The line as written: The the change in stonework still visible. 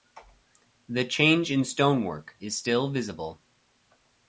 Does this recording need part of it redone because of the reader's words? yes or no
yes